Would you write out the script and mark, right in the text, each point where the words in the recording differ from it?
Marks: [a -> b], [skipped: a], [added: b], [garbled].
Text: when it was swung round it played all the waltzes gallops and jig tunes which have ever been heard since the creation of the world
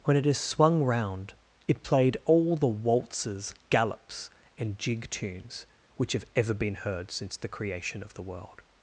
when it [was -> is] swung round it played all the waltzes gallops and jig tunes which have ever been heard since the creation of the world